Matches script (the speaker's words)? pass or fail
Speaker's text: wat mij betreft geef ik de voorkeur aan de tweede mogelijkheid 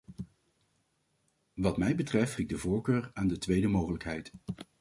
fail